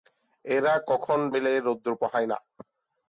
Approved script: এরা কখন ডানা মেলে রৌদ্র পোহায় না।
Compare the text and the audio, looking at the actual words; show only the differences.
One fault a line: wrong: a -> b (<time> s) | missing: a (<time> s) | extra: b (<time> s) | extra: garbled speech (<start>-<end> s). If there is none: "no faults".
missing: ডানা (1.2 s)